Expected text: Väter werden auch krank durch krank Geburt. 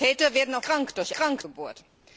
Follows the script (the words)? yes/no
yes